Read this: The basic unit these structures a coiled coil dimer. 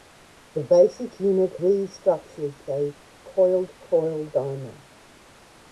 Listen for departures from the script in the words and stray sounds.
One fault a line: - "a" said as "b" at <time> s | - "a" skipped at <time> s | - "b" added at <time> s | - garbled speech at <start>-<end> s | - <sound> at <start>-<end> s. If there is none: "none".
none